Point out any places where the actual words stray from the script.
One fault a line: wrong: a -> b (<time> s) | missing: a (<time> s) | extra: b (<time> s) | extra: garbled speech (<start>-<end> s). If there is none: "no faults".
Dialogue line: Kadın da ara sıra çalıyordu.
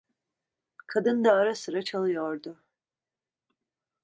no faults